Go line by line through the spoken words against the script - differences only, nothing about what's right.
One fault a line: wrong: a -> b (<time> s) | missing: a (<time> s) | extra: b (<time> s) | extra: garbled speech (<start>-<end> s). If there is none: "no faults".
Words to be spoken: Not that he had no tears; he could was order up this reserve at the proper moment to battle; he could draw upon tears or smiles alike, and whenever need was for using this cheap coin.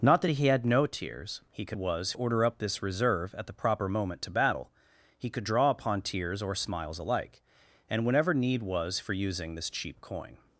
no faults